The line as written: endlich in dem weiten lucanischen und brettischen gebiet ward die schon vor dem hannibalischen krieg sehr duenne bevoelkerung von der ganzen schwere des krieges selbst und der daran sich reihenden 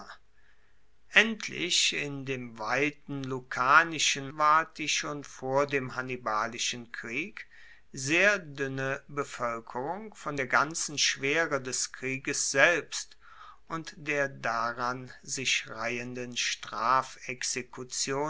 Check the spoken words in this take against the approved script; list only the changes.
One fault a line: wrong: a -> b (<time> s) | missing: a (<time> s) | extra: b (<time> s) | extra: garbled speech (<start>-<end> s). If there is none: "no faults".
missing: und brettischen gebiet (4.3 s)